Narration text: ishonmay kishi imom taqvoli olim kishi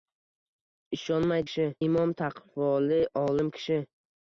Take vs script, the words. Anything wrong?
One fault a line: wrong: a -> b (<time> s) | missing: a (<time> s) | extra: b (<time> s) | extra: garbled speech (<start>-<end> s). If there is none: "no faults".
no faults